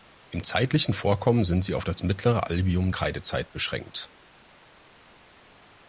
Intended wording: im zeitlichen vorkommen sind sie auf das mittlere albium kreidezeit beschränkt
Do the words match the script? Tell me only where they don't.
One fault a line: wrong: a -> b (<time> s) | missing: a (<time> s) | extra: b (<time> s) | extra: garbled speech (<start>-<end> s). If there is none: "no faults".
no faults